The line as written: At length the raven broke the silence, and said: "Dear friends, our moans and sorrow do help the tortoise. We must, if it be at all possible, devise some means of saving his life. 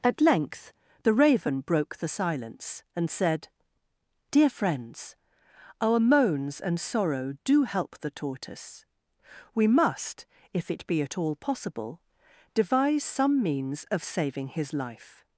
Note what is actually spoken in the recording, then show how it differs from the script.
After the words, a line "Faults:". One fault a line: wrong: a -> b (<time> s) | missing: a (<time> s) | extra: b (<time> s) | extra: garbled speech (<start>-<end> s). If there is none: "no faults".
At length the raven broke the silence, and said: "Dear friends, our moans and sorrow do help the tortoise. We must, if it be at all possible, devise some means of saving his life.
Faults:
no faults